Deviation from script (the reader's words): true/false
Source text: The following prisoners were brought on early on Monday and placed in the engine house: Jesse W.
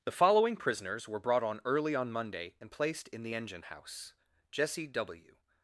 false